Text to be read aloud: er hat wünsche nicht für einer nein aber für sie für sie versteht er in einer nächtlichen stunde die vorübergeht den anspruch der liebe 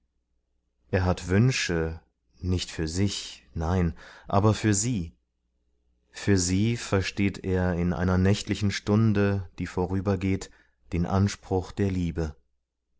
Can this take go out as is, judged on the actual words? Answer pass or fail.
fail